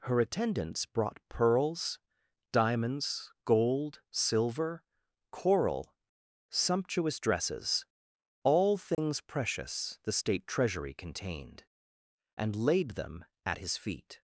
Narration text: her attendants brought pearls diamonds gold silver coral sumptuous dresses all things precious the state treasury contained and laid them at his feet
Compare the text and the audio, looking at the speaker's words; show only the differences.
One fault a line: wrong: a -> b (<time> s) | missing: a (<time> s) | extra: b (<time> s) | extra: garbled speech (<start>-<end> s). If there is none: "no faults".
no faults